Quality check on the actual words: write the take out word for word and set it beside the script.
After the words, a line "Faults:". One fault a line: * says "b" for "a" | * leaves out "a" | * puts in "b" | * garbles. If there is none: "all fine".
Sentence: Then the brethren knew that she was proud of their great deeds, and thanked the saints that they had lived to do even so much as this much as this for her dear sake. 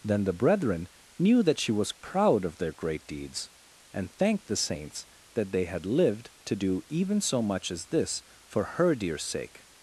Then the brethren knew that she was proud of their great deeds, and thanked the saints that they had lived to do even so much as this for her dear sake.
Faults:
* leaves out "much as this"